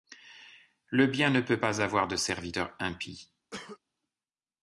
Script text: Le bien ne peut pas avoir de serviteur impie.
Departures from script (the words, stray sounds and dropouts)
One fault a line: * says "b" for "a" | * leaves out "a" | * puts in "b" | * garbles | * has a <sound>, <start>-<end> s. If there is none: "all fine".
* has a cough, 3.5-3.8 s